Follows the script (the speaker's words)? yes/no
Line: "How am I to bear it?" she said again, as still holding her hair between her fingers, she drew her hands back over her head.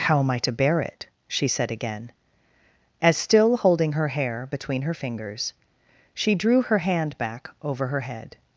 no